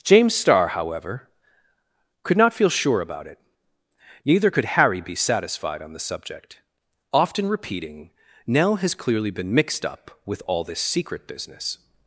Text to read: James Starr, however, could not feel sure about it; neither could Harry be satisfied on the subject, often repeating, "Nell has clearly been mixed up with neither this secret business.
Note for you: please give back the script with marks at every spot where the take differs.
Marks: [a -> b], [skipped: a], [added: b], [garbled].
James Starr, however, could not feel sure about it; neither could Harry be satisfied on the subject, often repeating, "Nell has clearly been mixed up with [neither -> all] this secret business.